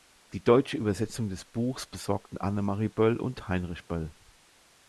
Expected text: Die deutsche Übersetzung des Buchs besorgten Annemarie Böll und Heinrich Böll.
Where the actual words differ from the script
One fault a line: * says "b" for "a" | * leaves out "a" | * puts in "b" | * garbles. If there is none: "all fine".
all fine